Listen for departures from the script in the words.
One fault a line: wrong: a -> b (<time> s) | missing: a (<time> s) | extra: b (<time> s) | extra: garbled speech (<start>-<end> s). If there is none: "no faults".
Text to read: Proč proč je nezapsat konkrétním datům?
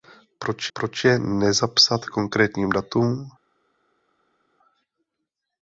no faults